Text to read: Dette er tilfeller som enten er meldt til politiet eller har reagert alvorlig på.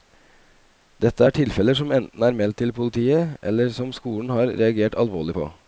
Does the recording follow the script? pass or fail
fail